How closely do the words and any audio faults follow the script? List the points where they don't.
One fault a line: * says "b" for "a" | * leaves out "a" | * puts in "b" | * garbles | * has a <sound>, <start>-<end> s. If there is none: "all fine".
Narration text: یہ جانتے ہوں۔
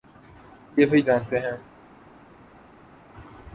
* puts in "وہی"